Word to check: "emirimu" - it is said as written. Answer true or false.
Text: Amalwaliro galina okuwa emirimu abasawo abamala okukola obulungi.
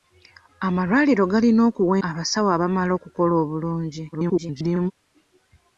false